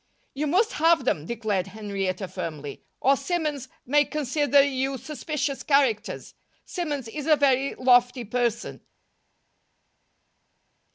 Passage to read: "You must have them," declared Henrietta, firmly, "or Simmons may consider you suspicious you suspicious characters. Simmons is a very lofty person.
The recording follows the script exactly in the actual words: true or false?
false